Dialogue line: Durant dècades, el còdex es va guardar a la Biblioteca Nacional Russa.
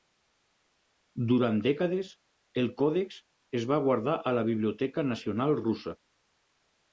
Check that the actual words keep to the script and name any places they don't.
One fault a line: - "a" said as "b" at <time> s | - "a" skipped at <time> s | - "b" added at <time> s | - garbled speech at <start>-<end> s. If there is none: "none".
none